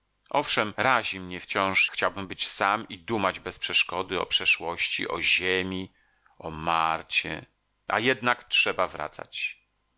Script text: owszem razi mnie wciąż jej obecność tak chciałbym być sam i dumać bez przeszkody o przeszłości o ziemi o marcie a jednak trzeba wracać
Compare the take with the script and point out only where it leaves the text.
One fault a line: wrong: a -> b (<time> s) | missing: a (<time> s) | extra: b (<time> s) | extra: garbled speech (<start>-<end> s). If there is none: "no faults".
missing: jej obecność tak (1.9 s)